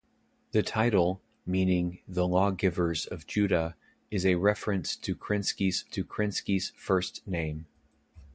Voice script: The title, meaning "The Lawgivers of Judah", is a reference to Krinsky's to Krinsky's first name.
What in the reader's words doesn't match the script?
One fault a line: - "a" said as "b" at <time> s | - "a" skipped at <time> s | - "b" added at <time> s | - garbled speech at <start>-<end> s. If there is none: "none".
none